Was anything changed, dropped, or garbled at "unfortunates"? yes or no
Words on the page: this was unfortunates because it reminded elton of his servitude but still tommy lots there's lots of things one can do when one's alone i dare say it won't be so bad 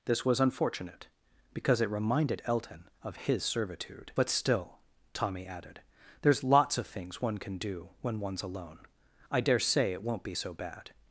yes